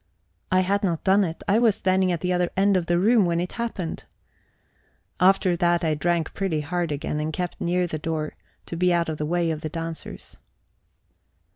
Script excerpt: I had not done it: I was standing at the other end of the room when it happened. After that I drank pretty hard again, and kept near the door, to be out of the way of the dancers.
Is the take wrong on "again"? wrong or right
right